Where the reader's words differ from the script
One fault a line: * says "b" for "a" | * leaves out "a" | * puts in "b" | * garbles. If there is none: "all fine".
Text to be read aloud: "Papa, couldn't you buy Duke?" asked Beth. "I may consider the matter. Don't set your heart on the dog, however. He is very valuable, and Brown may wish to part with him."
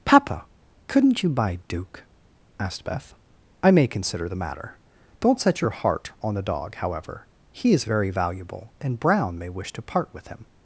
all fine